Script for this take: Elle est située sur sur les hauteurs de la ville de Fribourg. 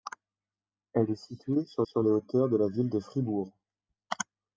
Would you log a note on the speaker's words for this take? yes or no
no